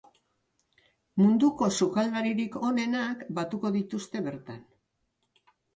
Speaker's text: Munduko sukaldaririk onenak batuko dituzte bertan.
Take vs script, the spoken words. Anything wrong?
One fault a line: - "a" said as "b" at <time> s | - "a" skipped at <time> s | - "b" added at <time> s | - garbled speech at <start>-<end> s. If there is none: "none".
none